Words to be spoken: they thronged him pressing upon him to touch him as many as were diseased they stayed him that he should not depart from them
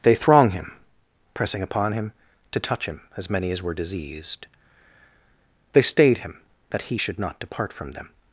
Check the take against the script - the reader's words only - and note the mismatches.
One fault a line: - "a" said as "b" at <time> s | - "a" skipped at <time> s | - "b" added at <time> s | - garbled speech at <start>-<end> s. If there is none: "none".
- "thronged" said as "throng" at 0.1 s